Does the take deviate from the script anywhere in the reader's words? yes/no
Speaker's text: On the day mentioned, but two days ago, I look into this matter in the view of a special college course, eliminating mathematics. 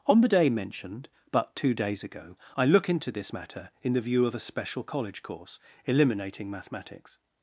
no